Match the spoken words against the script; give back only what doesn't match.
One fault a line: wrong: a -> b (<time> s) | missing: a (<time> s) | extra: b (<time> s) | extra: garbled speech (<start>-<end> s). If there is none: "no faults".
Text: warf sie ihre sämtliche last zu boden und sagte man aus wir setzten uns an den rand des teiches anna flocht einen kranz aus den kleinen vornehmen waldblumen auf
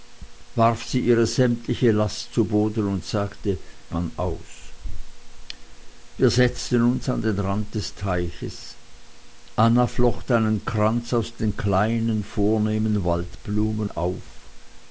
no faults